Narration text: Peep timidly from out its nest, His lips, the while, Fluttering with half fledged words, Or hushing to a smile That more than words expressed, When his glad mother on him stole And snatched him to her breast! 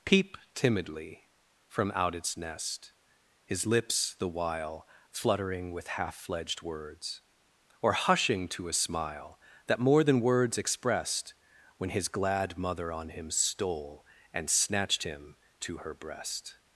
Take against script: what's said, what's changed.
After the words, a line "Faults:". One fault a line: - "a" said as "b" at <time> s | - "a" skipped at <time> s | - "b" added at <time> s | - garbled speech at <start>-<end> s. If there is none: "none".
Peep timidly from out its nest, His lips, the while, Fluttering with half fledged words, Or hushing to a smile That more than words expressed, When his glad mother on him stole And snatched him to her breast!
Faults:
none